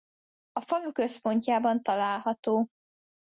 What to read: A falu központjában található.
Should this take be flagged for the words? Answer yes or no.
no